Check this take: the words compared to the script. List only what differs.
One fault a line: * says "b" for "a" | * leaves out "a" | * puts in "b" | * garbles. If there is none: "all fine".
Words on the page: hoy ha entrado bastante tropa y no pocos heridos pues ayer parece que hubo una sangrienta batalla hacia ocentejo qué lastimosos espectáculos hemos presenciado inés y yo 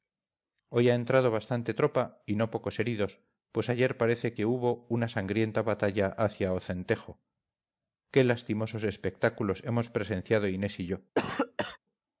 all fine